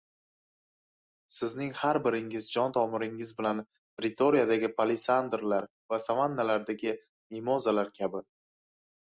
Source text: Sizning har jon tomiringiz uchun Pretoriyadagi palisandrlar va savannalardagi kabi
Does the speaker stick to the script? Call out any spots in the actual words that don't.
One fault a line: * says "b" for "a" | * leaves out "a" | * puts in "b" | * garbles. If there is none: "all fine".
* puts in "biringiz"
* says "bilan" for "uchun"
* puts in "mimozalar"